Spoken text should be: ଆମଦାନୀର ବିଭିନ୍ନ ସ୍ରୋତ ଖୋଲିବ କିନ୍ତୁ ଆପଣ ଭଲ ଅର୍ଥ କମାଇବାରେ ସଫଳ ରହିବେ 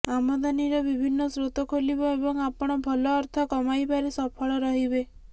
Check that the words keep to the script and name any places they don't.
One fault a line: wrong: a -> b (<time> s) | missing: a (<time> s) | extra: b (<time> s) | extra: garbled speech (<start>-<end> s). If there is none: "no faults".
wrong: କିନ୍ତୁ -> ଏବଂ (2.1 s)